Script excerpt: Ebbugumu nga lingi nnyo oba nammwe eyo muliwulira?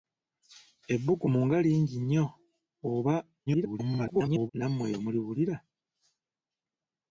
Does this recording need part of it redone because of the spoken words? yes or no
yes